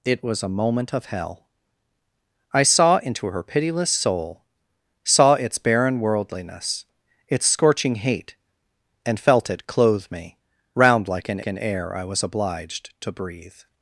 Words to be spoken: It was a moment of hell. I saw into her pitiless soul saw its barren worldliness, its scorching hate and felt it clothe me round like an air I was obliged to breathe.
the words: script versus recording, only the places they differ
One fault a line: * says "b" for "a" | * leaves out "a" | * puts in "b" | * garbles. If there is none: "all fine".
* puts in "an"